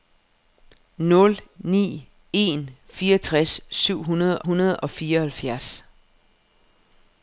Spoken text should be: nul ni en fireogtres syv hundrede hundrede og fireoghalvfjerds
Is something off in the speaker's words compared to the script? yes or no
no